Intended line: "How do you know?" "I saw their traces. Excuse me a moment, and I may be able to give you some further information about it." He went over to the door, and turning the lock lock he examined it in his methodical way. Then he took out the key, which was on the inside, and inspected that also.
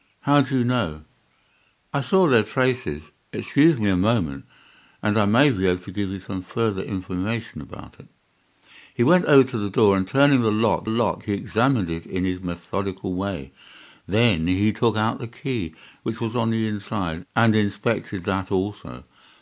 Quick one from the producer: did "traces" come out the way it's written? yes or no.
yes